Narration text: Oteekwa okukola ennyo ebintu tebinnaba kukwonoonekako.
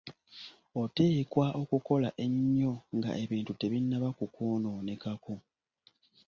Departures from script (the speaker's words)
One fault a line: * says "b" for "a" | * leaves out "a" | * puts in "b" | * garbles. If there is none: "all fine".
* puts in "nga"